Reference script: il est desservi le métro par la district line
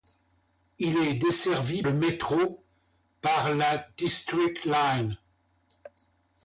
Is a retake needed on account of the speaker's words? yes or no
no